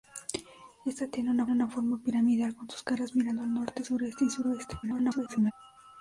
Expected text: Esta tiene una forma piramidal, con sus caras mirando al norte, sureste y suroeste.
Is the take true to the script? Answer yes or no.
no